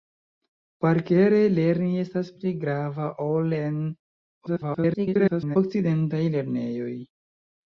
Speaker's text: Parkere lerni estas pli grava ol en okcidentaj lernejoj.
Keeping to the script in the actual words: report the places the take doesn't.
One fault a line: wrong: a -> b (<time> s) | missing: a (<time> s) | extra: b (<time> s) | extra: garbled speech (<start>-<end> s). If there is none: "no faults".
extra: garbled speech (4.5-5.6 s)